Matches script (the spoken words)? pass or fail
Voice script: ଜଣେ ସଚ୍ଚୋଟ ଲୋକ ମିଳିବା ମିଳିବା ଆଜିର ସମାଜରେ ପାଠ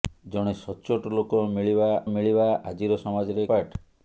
pass